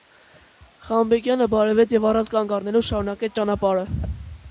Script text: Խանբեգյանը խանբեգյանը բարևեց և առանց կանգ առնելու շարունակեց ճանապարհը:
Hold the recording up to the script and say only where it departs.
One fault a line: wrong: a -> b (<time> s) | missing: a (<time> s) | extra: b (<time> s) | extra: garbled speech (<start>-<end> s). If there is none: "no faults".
missing: խանբեգյանը (1.5 s)